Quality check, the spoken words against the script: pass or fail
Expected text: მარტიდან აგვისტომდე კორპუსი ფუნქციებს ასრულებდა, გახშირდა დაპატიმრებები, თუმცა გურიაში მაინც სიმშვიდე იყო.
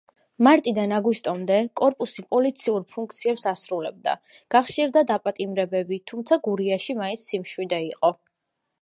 fail